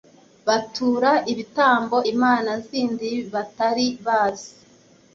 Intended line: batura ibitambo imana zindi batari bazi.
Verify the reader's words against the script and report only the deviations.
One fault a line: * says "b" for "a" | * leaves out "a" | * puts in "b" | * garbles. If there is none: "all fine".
all fine